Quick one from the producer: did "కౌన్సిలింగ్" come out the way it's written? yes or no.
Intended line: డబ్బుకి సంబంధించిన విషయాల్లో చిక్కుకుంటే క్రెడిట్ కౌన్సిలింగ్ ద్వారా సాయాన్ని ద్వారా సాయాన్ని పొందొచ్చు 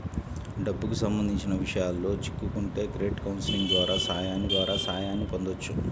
yes